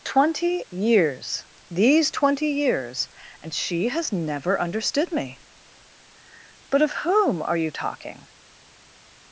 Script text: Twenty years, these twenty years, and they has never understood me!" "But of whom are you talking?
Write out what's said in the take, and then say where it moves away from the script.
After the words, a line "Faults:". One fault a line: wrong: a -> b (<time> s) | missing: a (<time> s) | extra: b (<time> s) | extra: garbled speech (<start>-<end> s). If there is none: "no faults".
Twenty years, these twenty years, and she has never understood me!" "But of whom are you talking?
Faults:
wrong: they -> she (3.5 s)